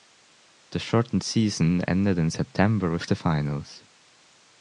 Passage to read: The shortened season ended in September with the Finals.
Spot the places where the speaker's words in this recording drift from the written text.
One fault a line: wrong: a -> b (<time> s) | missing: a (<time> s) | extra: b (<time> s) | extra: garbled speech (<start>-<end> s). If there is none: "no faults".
no faults